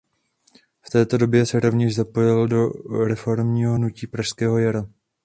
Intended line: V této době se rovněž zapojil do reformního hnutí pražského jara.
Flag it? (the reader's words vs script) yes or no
no